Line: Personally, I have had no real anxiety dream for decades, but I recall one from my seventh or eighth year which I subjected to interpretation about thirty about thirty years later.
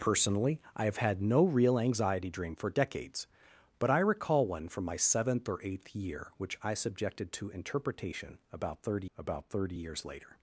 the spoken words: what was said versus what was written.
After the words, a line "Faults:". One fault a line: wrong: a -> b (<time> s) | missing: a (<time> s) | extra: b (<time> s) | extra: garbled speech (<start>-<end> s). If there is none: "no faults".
Personally, I have had no real anxiety dream for decades, but I recall one from my seventh or eighth year which I subjected to interpretation about thirty about thirty years later.
Faults:
no faults